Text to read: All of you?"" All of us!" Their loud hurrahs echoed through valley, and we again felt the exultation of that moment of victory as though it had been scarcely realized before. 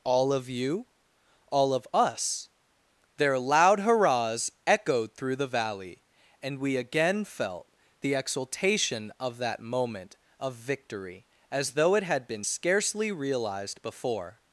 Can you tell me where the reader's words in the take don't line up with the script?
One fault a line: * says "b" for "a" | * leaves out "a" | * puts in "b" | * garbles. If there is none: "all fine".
* puts in "the"